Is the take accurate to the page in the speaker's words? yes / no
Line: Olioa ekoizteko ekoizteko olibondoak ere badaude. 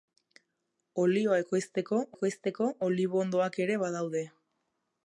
yes